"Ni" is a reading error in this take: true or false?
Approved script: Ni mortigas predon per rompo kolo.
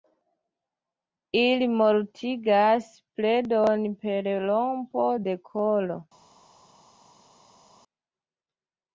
true